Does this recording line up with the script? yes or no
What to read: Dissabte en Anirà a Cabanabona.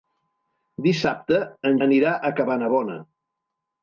yes